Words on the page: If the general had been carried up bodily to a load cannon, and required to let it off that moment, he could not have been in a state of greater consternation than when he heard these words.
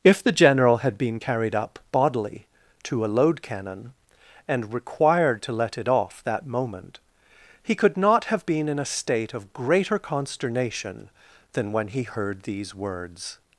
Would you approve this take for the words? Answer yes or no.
yes